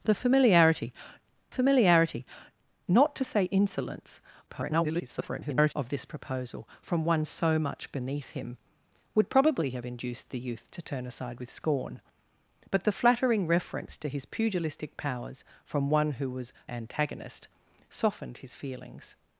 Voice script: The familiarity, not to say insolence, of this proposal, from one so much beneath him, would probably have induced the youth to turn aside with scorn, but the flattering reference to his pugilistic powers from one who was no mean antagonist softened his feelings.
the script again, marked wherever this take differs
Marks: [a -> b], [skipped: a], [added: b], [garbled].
The familiarity, [added: familiarity] not to say insolence, [garbled] of this proposal, from one so much beneath him, would probably have induced the youth to turn aside with scorn, but the flattering reference to his pugilistic powers from one who was [skipped: no mean] antagonist softened his feelings.